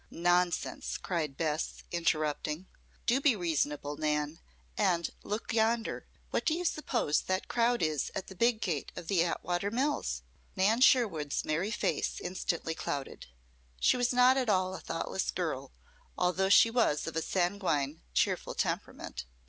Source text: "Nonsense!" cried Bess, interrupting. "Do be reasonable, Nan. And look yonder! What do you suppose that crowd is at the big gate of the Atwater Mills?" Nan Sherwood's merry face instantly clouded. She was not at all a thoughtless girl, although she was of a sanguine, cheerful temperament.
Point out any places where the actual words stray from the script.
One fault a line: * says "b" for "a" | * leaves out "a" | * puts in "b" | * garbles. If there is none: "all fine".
all fine